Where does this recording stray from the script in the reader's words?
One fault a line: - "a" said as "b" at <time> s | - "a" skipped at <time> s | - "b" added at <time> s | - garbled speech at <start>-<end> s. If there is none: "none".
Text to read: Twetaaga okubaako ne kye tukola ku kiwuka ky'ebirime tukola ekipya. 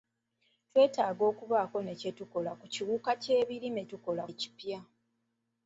none